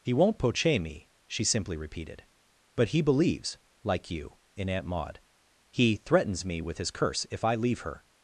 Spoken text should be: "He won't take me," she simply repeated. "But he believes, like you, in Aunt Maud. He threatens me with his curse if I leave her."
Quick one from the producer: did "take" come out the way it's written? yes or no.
no